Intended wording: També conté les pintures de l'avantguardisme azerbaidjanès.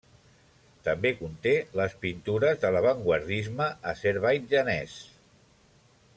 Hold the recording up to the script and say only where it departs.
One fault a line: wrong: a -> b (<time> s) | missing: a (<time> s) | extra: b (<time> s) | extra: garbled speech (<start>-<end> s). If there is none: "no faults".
no faults